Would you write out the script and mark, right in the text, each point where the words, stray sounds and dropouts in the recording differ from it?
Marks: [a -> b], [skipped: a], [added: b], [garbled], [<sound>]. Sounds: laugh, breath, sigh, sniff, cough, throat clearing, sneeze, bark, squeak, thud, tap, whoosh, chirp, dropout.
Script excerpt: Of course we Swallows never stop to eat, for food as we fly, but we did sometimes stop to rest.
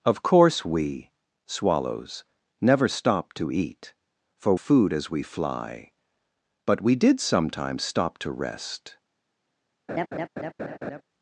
Of course we Swallows never stop to eat, for food as we fly, but we did sometimes stop to rest. [laugh]